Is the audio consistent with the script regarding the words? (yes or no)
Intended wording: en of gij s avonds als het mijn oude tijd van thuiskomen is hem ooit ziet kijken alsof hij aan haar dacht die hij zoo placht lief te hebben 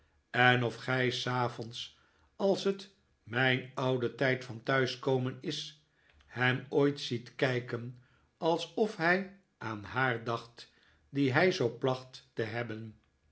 no